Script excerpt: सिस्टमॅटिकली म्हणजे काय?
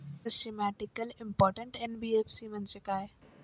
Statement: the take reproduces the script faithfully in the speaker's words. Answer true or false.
false